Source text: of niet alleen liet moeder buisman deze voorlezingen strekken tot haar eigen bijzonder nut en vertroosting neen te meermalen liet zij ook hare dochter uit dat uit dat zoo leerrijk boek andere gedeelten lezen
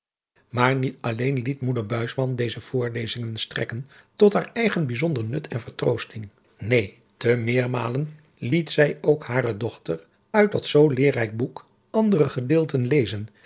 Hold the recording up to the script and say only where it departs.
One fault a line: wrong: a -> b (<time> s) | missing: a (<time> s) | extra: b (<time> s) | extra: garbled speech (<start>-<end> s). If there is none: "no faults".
wrong: of -> maar (0.5 s)
missing: uit dat (10.6 s)